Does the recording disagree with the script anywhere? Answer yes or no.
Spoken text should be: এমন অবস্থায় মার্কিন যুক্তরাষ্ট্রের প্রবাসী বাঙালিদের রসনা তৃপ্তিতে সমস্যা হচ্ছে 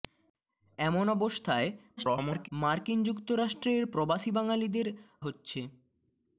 yes